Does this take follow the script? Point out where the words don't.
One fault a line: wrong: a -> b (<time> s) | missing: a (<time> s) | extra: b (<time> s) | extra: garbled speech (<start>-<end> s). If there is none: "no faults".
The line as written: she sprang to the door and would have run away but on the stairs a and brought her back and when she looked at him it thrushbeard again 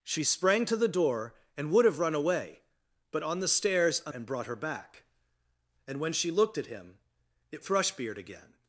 no faults